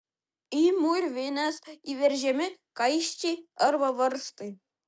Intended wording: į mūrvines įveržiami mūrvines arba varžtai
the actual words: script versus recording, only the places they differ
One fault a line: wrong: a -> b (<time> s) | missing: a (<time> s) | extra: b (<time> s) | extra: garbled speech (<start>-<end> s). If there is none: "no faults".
wrong: mūrvines -> kaiščiai (2.8 s)